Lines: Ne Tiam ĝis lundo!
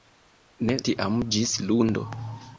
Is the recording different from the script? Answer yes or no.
no